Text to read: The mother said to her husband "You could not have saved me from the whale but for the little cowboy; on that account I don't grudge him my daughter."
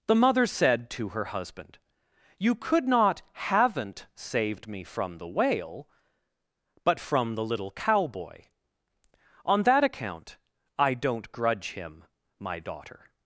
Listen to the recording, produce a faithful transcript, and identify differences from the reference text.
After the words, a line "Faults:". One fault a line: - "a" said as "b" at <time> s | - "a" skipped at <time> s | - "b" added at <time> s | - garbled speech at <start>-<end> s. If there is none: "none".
The mother said to her husband "You could not haven't saved me from the whale but from the little cowboy; on that account I don't grudge him my daughter."
Faults:
- "have" said as "haven't" at 3.3 s
- "for" said as "from" at 7.0 s